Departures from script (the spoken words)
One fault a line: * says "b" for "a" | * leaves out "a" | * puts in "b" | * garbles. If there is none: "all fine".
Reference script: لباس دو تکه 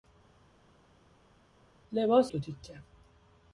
all fine